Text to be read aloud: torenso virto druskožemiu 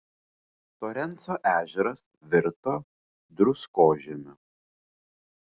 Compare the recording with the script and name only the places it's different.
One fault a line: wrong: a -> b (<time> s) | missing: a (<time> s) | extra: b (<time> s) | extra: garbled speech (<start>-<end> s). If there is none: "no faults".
extra: ežeras (1.5 s)